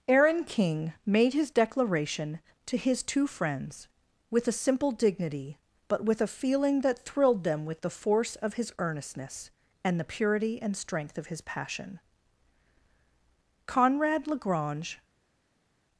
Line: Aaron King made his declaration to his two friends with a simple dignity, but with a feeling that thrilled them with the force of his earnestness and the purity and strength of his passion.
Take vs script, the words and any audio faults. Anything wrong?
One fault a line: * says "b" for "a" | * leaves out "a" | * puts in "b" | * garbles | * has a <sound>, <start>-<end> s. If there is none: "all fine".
* puts in "Conrad Lagrange"